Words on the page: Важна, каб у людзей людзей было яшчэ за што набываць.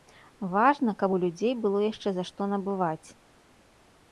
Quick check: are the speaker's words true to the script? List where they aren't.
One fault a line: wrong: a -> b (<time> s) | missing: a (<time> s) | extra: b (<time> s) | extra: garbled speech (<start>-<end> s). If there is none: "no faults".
missing: людзей (1.5 s)